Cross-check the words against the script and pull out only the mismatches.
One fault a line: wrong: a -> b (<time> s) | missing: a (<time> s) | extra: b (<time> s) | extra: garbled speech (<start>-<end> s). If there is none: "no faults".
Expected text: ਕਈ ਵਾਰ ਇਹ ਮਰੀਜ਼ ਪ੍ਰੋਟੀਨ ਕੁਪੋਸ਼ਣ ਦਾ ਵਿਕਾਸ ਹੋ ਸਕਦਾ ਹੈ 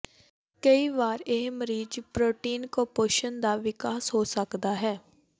no faults